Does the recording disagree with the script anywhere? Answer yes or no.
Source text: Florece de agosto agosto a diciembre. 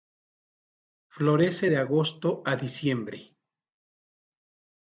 yes